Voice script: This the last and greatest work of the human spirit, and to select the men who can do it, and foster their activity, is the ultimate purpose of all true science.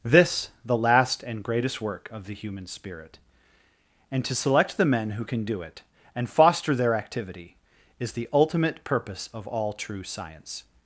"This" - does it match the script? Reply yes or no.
yes